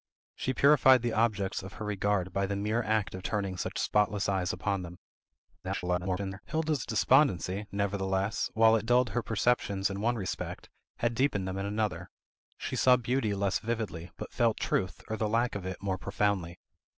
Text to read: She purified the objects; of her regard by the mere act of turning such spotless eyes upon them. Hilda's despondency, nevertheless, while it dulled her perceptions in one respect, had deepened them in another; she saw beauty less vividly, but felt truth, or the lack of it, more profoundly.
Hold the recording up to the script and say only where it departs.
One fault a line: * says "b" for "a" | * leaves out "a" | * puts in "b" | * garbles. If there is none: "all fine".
* garbles